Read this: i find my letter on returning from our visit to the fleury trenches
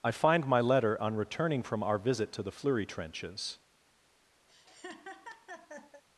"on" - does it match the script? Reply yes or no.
yes